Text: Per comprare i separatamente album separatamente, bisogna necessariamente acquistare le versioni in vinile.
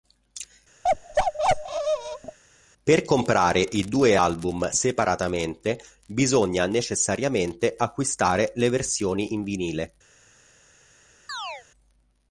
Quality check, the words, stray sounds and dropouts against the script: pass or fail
fail